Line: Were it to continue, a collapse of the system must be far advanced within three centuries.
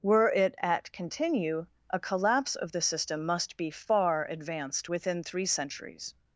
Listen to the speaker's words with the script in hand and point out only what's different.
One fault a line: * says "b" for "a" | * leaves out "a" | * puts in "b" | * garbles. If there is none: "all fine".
* says "at" for "to"